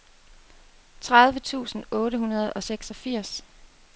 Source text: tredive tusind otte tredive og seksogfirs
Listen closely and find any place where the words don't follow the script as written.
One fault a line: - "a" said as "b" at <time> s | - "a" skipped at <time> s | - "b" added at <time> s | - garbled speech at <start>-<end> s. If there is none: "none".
- "tredive" said as "hundrede" at 2.2 s